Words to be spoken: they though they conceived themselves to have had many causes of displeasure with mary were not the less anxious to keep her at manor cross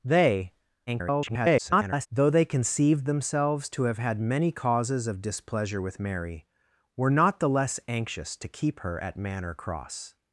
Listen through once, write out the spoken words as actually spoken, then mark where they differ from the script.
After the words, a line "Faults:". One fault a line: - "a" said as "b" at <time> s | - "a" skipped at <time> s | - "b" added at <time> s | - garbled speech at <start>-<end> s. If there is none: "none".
they [garbled] though they conceived themselves to have had many causes of displeasure with mary were not the less anxious to keep her at manor cross
Faults:
- garbled speech at 0.9-2.1 s